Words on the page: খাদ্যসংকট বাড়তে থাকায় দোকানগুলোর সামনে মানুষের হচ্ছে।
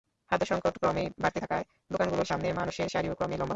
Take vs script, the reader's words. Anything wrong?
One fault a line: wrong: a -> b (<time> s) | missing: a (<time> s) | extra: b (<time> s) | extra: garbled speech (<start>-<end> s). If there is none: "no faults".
extra: ক্রমেই (0.8 s)
extra: সারিও ক্রমেই লম্বা (2.9 s)